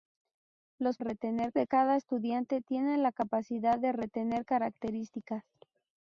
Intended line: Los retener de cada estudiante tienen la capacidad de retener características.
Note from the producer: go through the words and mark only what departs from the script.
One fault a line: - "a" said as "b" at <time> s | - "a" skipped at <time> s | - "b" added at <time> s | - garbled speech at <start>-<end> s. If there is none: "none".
none